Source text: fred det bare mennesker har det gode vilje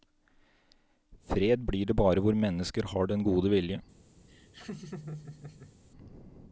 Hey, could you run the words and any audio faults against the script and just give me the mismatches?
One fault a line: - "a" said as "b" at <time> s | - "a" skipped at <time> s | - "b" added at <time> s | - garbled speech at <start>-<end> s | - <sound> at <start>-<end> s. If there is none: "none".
- "blir" added at 1.7 s
- "hvor" added at 2.2 s
- "det" said as "den" at 3.1 s
- laugh at 4.3-5.8 s